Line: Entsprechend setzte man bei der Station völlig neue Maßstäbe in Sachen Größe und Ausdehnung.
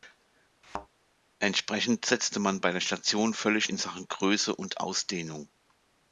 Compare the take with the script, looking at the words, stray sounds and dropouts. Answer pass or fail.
fail